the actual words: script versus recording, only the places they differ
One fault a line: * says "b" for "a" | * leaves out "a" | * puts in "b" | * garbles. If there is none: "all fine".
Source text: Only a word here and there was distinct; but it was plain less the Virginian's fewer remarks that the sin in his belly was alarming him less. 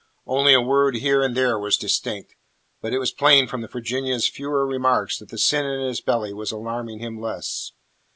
* says "from" for "less"